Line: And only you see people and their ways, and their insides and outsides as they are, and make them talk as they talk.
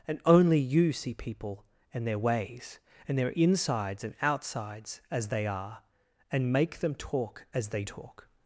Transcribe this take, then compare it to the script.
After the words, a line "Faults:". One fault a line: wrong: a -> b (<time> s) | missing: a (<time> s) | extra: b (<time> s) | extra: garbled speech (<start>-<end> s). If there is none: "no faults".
And only you see people and their ways, and their insides and outsides as they are, and make them talk as they talk.
Faults:
no faults